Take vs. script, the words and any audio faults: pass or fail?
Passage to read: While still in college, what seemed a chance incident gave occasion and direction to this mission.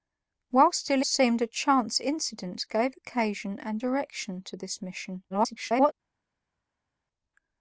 fail